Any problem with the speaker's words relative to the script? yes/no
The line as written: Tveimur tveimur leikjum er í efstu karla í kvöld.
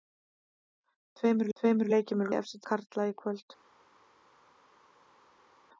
no